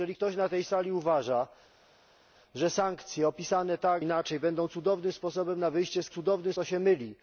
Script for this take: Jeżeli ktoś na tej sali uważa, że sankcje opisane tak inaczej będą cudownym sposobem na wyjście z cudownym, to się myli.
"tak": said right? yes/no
yes